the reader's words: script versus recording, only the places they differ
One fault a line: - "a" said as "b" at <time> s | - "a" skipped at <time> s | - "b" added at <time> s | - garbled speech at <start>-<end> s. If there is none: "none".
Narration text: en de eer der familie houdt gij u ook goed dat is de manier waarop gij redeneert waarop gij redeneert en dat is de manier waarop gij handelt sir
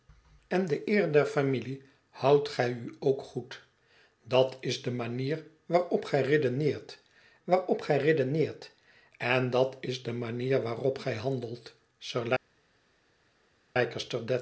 none